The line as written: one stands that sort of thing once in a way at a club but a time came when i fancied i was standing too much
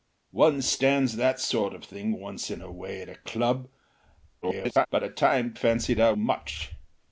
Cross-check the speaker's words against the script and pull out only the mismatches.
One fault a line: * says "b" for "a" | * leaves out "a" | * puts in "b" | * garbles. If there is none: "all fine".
* garbles
* leaves out "came when i"
* leaves out "was standing too"